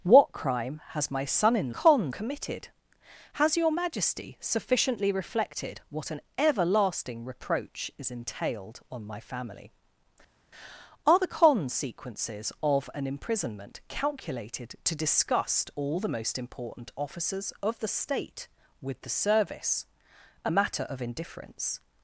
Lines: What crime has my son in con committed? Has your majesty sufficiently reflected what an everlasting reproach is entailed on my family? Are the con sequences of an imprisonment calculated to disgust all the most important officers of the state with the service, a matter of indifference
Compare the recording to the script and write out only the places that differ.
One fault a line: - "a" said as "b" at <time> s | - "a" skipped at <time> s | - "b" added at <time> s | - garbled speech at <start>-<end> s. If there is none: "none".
none